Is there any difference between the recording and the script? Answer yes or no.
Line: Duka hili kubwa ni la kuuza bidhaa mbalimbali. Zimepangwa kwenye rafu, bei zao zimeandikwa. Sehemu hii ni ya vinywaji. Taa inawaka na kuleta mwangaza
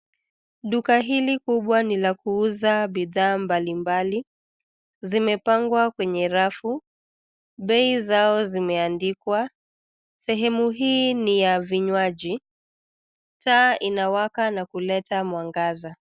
no